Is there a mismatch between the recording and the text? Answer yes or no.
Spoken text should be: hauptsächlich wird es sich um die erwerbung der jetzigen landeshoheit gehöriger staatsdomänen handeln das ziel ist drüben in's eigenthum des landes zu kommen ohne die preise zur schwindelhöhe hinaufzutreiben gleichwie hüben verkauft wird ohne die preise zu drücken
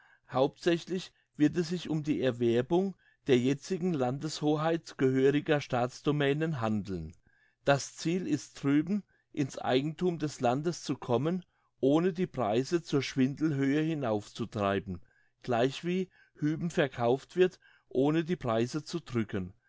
no